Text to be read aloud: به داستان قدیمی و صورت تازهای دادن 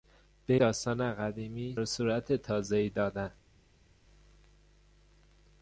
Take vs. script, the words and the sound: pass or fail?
pass